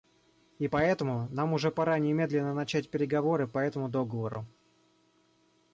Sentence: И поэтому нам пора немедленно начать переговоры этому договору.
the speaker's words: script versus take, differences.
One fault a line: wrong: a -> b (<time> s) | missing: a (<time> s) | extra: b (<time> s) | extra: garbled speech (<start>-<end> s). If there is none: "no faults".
extra: уже (1.5 s)
extra: по (3.5 s)